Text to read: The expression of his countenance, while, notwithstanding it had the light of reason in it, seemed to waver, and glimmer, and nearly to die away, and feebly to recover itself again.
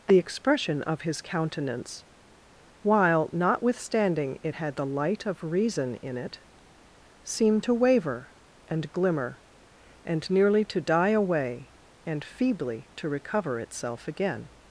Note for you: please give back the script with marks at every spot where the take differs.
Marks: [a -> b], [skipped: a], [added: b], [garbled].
The expression of his countenance, while, notwithstanding it had the light of reason in it, seemed to waver, and glimmer, and nearly to die away, and feebly to recover itself again.